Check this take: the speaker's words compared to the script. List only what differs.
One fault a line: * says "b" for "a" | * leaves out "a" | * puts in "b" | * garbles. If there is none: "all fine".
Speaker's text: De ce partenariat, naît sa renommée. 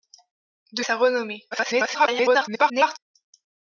* leaves out "ce partenariat naît"
* garbles